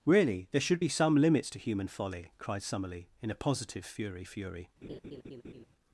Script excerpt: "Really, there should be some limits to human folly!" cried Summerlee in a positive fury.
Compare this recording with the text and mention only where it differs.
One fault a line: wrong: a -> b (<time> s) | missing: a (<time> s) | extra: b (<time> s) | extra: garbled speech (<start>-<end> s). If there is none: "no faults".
extra: fury (4.2 s)